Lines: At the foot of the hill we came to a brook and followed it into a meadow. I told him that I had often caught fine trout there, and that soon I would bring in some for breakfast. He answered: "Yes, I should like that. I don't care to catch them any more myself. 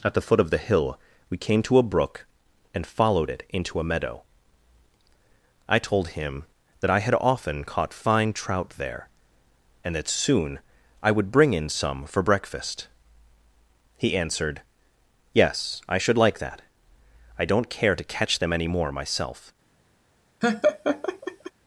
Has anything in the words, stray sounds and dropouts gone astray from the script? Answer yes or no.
yes